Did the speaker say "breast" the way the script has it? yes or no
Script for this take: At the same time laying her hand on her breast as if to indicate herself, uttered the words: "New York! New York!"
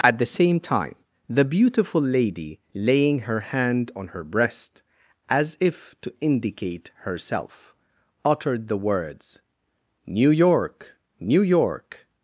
yes